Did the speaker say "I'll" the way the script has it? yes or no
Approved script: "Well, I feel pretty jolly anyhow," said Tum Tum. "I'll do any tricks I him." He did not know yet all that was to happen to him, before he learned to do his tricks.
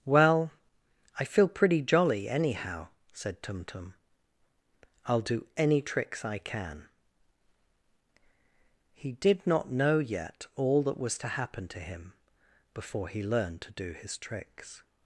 yes